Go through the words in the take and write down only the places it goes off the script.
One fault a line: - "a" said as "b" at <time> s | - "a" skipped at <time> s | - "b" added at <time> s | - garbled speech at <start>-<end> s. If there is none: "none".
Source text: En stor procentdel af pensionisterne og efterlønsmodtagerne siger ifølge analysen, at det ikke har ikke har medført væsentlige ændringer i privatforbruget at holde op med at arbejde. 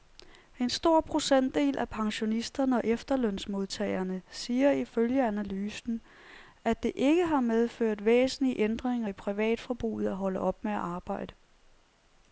- "ikke har" skipped at 7.4 s